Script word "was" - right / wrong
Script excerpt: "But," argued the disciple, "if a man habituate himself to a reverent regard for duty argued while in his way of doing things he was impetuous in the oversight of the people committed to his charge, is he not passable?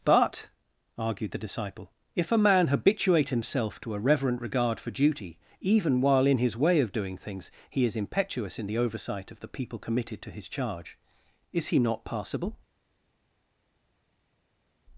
wrong